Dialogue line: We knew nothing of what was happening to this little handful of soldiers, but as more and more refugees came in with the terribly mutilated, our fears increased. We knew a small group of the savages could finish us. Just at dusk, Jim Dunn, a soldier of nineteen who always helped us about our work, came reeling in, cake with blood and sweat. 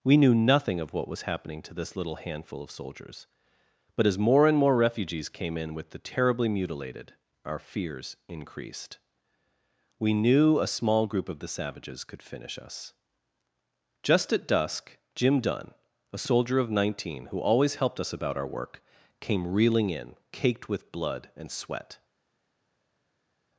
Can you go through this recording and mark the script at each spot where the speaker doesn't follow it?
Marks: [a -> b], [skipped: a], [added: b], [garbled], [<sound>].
We knew nothing of what was happening to this little handful of soldiers, but as more and more refugees came in with the terribly mutilated, our fears increased. We knew a small group of the savages could finish us. Just at dusk, Jim Dunn, a soldier of nineteen who always helped us about our work, came reeling in, [cake -> caked] with blood and sweat.